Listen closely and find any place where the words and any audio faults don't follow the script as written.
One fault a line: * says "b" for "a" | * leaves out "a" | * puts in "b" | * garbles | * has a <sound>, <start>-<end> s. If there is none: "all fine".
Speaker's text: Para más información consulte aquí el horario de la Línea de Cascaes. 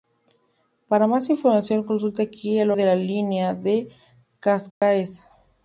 * leaves out "horario"
* has a dropout, 4.7-4.8 s